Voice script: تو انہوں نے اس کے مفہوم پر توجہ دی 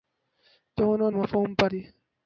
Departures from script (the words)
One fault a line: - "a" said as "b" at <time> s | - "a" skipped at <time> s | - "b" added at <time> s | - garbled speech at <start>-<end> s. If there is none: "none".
- "نے اس کے" skipped at 1.1 s
- "توجہ" skipped at 1.7 s